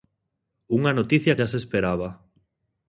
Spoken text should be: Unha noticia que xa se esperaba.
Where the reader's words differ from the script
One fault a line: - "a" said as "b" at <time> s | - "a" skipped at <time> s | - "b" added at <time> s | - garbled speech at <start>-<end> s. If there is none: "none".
- "que" skipped at 1.4 s